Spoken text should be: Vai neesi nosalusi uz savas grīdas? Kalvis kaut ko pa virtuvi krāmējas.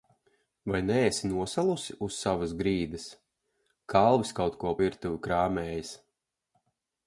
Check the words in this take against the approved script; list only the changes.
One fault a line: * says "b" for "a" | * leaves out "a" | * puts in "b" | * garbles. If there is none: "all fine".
* leaves out "pa"